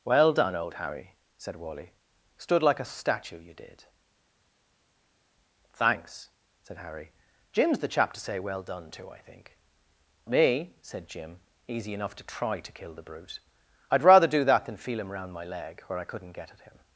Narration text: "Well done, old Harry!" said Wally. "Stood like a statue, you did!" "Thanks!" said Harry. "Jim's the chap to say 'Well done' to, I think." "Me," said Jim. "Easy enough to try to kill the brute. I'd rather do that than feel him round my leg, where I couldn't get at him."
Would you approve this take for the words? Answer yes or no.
yes